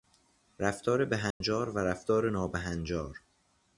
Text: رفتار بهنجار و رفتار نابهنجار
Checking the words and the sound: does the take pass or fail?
fail